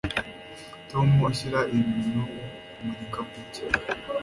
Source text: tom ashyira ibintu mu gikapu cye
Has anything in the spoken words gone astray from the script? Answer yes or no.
no